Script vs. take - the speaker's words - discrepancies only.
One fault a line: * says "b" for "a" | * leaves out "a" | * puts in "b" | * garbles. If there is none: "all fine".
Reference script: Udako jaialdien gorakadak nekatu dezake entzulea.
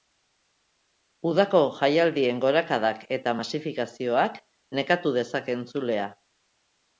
* puts in "eta masifikazioak"